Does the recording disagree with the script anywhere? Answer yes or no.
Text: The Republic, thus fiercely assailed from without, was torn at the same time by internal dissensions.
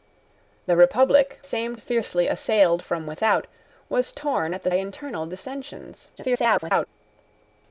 yes